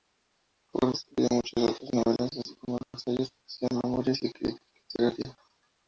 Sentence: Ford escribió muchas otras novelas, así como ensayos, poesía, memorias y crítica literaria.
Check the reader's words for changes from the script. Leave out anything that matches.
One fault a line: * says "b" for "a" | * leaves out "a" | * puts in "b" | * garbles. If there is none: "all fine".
all fine